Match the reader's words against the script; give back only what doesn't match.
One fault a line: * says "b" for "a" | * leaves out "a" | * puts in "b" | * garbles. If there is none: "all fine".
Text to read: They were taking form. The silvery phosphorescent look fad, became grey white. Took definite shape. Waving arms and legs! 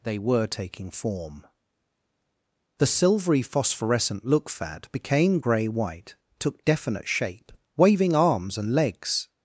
all fine